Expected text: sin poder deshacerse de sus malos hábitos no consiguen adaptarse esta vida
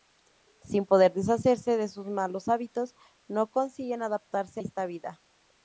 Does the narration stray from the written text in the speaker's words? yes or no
no